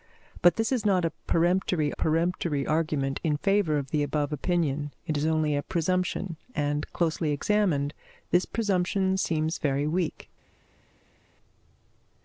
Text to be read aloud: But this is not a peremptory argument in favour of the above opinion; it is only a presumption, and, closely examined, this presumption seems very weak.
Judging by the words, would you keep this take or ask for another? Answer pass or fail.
fail